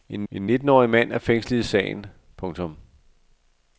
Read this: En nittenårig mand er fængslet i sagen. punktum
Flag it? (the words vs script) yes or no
yes